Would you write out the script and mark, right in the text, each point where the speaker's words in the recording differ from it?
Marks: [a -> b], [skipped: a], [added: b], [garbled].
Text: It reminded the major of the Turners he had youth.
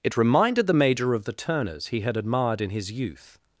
It reminded the major of the Turners he had [added: admired in his] youth.